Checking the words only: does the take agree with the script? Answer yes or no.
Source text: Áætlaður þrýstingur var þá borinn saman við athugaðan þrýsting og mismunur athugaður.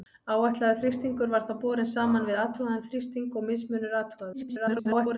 no